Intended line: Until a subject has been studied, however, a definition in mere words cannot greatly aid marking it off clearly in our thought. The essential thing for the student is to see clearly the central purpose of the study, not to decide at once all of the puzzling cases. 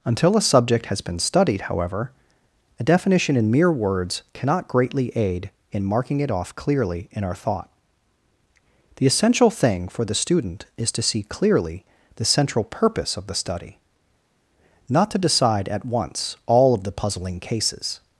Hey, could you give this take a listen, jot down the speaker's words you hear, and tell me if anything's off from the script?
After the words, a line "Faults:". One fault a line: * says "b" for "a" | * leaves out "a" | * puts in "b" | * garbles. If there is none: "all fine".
Until a subject has been studied, however, a definition in mere words cannot greatly aid in marking it off clearly in our thought. The essential thing for the student is to see clearly the central purpose of the study, not to decide at once all of the puzzling cases.
Faults:
* puts in "in"